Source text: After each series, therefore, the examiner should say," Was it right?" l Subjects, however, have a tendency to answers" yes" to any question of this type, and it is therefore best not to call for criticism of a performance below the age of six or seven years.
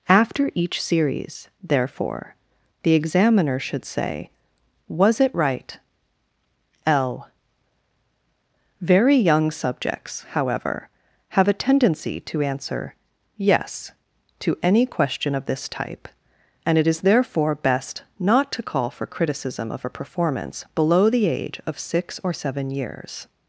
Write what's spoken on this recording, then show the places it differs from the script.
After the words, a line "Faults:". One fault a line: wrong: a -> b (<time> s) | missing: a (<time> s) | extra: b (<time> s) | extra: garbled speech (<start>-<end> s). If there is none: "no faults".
After each series, therefore, the examiner should say," Was it right?" l Very young subjects, however, have a tendency to answer" yes" to any question of this type, and it is therefore best not to call for criticism of a performance below the age of six or seven years.
Faults:
extra: Very young (8.8 s)
wrong: answers -> answer (12.4 s)